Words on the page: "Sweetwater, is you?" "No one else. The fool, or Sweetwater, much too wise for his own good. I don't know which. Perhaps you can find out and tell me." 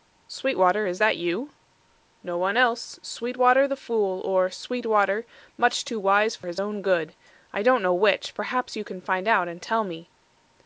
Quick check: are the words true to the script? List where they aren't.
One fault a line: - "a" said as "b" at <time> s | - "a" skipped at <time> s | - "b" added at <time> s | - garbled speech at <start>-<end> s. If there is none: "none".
- "that" added at 1.0 s
- "Sweetwater" added at 3.0 s